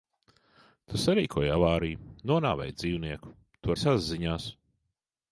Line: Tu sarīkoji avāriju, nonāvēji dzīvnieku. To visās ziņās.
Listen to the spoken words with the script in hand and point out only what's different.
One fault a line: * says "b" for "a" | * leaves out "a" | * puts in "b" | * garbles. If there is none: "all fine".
all fine